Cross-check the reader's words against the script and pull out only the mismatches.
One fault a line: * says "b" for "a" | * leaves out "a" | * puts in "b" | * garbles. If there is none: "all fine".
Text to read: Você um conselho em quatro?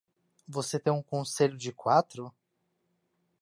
* puts in "tem"
* says "de" for "em"